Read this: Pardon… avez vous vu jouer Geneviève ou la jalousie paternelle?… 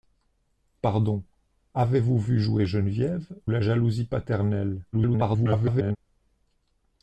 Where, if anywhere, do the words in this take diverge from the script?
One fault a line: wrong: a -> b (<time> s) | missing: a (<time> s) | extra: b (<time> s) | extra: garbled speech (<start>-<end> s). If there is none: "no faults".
missing: ou (3.4 s)
extra: garbled speech (4.9-6.0 s)